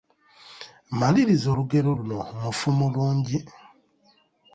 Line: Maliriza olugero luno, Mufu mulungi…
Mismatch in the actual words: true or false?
false